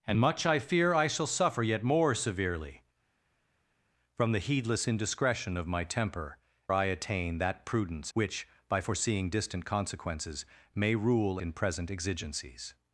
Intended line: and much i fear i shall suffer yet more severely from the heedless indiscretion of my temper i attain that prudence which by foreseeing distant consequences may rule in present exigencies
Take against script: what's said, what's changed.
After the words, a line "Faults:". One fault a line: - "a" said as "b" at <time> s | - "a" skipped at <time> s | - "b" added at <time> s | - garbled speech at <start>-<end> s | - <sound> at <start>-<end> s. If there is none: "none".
and much i fear i shall suffer yet more severely from the heedless indiscretion of my temper i attain that prudence which by foreseeing distant consequences may rule in present exigencies
Faults:
none